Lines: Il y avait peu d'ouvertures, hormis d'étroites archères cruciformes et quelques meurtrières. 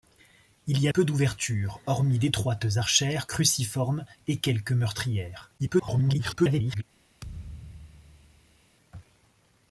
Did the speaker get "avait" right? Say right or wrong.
wrong